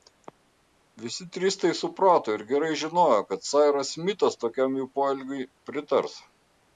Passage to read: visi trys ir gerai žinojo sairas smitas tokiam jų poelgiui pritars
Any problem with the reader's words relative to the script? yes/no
yes